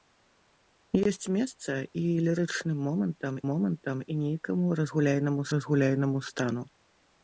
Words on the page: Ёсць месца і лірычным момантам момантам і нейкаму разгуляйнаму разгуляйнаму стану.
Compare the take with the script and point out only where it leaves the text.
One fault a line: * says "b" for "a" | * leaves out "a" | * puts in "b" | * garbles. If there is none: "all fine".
all fine